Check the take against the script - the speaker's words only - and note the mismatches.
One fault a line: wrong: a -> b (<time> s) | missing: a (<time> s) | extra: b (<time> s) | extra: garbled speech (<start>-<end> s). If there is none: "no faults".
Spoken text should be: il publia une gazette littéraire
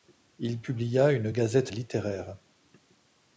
no faults